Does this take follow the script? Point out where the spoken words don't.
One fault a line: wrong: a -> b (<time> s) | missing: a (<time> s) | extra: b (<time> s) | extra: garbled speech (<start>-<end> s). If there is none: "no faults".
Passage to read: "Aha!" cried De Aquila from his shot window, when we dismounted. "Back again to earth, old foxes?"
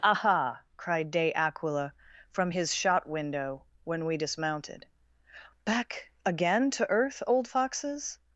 no faults